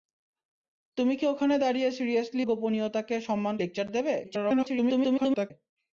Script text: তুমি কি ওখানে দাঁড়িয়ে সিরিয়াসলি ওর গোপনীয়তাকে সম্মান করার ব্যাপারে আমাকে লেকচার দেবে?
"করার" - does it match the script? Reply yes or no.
no